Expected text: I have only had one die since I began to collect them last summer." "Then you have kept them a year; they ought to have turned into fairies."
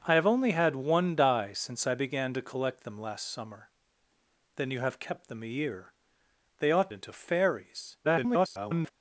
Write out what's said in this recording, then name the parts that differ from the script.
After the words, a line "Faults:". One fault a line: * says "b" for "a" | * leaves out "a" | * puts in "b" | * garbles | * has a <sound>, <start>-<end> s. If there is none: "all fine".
I have only had one die since I began to collect them last summer." "Then you have kept them a year; they ought into fairies." [garbled]
Faults:
* leaves out "to have turned"
* garbles